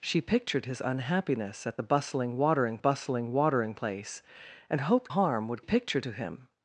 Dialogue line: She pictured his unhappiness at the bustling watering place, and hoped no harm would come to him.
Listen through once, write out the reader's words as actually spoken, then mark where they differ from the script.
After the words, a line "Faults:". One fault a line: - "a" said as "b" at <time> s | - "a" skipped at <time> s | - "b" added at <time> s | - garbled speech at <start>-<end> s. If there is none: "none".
She pictured his unhappiness at the bustling watering bustling watering place, and hoped harm would pictured to him.
Faults:
- "bustling watering" added at 2.8 s
- "no" skipped at 5.1 s
- "come" said as "pictured" at 5.6 s